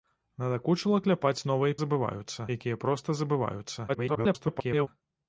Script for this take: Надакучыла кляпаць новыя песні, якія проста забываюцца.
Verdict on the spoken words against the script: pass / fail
fail